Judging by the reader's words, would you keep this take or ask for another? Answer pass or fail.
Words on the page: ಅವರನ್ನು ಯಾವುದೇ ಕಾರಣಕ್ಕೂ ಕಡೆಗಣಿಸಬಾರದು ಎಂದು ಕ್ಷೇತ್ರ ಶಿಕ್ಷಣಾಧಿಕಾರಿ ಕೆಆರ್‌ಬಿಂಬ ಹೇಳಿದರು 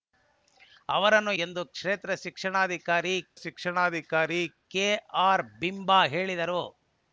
fail